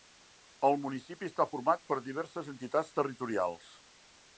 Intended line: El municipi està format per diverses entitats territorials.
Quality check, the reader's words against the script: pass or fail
pass